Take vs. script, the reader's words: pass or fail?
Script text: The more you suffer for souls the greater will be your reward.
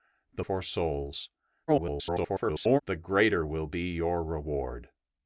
fail